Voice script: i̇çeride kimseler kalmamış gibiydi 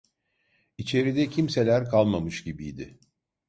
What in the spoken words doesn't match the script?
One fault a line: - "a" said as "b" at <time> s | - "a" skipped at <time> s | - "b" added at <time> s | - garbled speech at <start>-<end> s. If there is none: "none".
none